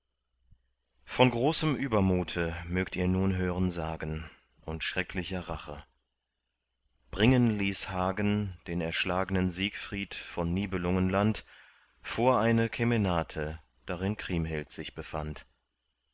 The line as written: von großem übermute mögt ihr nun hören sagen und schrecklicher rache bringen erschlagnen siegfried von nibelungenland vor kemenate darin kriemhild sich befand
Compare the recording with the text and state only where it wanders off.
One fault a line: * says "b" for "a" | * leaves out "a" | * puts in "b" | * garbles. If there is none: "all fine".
* puts in "ließ hagen den"
* puts in "eine"